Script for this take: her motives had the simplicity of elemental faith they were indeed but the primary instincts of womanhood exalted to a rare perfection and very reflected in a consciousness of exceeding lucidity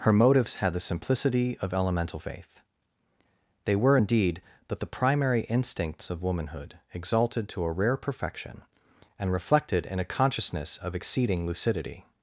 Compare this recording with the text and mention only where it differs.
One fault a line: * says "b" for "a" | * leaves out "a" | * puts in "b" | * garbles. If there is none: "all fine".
* leaves out "very"